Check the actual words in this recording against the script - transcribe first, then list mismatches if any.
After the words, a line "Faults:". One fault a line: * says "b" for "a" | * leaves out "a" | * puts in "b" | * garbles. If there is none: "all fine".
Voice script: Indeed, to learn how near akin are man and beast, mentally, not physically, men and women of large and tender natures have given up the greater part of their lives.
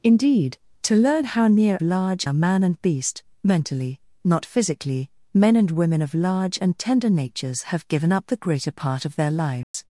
Indeed, to learn how near large are man and beast, mentally, not physically, men and women of large and tender natures have given up the greater part of their lives.
Faults:
* says "large" for "akin"